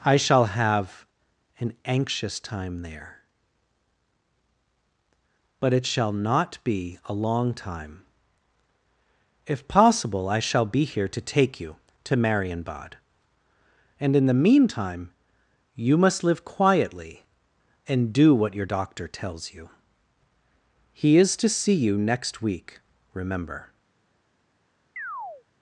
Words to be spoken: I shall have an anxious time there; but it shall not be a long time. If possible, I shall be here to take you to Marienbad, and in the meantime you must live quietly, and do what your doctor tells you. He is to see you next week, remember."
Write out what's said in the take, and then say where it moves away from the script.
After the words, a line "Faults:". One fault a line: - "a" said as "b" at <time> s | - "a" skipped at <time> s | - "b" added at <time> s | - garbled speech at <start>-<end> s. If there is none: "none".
I shall have an anxious time there; but it shall not be a long time. If possible, I shall be here to take you to Marienbad, and in the meantime you must live quietly, and do what your doctor tells you. He is to see you next week, remember."
Faults:
none